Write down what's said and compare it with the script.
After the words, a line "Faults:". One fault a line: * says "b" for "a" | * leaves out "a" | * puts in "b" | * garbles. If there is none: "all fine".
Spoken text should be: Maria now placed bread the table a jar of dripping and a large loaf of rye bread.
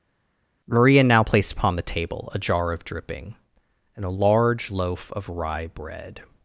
Maria now placed upon the table a jar of dripping and a large loaf of rye bread.
Faults:
* says "upon" for "bread"